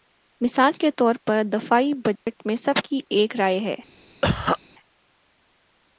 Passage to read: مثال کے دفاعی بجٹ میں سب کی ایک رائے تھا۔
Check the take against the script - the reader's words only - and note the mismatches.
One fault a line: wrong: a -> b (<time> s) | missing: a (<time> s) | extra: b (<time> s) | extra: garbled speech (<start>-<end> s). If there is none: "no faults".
extra: طور پر (0.9 s)
wrong: تھا -> ہے (3.6 s)